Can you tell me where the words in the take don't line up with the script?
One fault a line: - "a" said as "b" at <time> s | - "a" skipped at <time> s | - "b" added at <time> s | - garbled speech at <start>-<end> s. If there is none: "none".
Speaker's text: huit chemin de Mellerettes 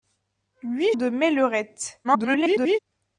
- "chemin" skipped at 0.9 s
- garbled speech at 2.0-2.8 s